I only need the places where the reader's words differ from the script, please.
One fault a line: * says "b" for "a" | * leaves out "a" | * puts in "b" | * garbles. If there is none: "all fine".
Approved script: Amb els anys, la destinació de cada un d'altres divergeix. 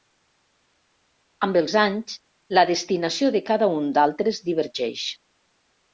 all fine